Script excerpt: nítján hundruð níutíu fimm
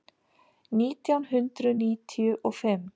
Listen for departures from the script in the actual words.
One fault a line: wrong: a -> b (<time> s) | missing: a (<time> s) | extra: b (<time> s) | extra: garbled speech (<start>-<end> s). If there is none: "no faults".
extra: og (2.5 s)